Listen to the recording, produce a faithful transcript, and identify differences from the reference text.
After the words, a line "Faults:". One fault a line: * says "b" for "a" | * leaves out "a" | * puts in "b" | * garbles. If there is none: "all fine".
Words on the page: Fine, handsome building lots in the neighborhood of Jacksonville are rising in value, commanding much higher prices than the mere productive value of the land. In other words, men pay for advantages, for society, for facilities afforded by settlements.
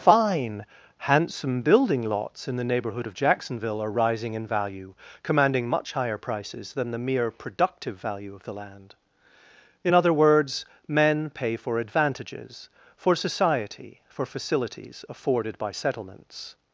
Fine, handsome building lots in the neighborhood of Jacksonville are rising in value, commanding much higher prices than the mere productive value of the land. In other words, men pay for advantages, for society, for facilities afforded by settlements.
Faults:
all fine